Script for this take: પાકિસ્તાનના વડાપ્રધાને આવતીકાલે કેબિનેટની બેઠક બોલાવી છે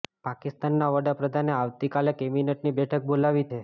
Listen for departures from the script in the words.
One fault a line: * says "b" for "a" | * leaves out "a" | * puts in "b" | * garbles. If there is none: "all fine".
all fine